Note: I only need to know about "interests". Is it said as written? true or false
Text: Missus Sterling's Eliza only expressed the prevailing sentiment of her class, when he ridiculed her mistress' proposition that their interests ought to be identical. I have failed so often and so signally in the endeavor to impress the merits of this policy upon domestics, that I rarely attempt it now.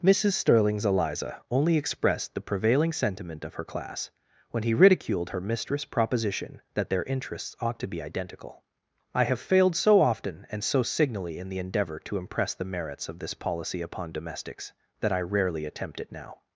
true